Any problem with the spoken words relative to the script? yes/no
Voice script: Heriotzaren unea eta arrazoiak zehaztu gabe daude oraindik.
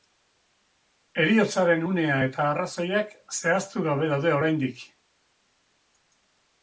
no